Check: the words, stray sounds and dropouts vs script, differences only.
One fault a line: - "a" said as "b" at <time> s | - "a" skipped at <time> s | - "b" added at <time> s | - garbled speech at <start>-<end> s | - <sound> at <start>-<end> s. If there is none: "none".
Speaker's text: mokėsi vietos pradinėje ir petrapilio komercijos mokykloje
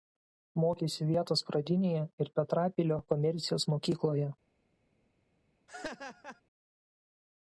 - laugh at 5.7-6.4 s